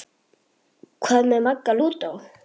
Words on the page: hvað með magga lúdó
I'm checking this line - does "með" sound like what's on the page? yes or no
yes